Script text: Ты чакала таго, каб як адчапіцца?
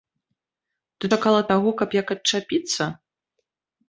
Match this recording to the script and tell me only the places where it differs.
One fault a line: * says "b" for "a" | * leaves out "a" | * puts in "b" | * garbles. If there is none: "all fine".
all fine